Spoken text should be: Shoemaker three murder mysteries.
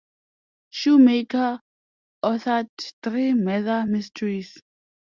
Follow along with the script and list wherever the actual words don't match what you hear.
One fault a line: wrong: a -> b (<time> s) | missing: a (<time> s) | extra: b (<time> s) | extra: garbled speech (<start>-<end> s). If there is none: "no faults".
extra: authored (2.2 s)